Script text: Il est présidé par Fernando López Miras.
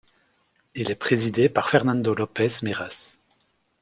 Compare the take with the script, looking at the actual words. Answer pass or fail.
pass